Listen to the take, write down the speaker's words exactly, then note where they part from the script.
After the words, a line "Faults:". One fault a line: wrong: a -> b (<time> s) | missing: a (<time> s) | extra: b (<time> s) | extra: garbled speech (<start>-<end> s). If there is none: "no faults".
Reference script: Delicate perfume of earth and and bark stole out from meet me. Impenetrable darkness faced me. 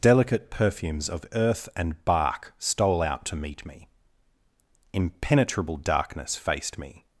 Delicate perfumes of earth and bark stole out to meet me. Impenetrable darkness faced me.
Faults:
wrong: perfume -> perfumes (0.5 s)
missing: and (2.0 s)
wrong: from -> to (3.2 s)